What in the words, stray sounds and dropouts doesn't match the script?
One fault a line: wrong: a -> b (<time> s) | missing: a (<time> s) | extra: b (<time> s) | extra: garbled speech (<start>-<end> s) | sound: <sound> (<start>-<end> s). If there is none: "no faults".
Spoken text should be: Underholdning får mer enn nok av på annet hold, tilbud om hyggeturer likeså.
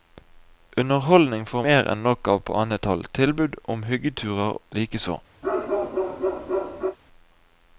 sound: bark (5.4-7.0 s)